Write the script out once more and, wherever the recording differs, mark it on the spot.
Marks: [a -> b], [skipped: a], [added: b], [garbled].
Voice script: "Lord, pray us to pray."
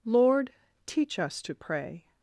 "Lord, [pray -> teach] us to pray."